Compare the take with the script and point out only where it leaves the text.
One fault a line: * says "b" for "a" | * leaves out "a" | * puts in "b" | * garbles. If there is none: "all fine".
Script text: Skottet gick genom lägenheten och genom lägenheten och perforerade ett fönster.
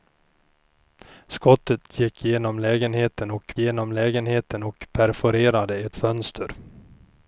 all fine